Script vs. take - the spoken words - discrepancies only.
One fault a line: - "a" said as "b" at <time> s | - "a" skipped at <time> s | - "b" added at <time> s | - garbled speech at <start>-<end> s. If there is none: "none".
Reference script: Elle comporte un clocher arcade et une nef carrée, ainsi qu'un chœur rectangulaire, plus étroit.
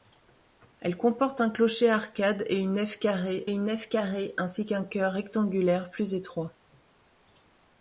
- "une nef carrée" added at 3.5 s